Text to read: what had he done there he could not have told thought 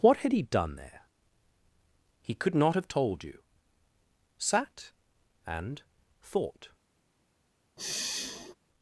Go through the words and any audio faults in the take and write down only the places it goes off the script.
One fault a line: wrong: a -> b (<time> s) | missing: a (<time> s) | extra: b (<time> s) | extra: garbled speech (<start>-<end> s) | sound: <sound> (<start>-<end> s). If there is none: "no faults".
extra: you sat and (3.2 s)
sound: sigh (7.8-8.5 s)